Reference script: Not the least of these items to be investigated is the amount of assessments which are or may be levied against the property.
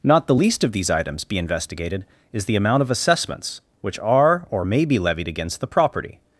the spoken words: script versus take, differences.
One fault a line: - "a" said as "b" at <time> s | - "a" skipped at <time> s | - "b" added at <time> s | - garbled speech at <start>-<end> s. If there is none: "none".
- "to" skipped at 1.2 s